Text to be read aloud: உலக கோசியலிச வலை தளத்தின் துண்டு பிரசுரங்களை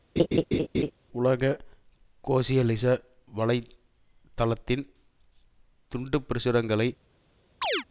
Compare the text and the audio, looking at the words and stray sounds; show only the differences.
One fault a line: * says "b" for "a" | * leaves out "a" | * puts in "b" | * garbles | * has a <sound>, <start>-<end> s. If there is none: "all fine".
* has a laugh, 0.2-0.9 s
* has a chirp, 7.6-7.8 s